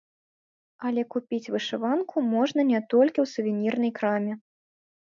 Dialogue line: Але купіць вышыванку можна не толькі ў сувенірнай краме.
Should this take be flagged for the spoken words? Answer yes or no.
no